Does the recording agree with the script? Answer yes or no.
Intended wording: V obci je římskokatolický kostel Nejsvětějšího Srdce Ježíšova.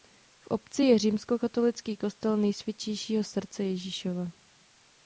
yes